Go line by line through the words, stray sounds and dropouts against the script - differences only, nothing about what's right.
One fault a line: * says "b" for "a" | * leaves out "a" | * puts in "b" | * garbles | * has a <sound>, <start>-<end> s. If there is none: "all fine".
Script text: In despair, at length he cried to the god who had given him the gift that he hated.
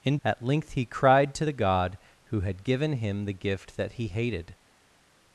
* leaves out "despair"